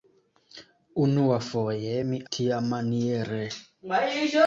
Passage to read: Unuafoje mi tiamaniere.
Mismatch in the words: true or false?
false